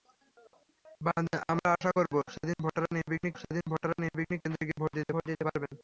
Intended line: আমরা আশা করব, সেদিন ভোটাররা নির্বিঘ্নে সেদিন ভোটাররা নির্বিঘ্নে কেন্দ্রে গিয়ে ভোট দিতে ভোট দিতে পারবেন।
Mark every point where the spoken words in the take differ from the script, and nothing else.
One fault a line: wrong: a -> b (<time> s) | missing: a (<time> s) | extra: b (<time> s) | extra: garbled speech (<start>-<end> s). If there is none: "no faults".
no faults